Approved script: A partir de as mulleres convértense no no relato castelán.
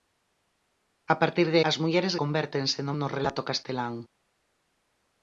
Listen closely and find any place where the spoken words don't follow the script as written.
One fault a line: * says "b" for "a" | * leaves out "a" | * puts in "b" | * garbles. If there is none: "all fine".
all fine